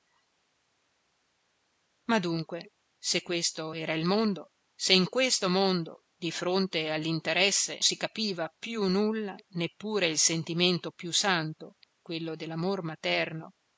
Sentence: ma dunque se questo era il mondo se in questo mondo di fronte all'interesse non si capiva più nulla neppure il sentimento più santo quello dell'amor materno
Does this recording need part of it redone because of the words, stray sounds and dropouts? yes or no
yes